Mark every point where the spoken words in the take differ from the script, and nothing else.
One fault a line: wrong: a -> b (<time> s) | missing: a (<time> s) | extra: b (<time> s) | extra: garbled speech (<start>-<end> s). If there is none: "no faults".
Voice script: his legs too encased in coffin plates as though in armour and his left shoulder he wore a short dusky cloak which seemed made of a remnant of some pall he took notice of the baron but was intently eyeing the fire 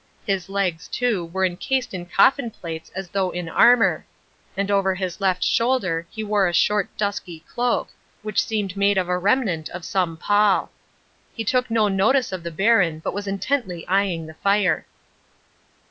extra: were (1.3 s)
extra: over (4.7 s)
extra: no (11.7 s)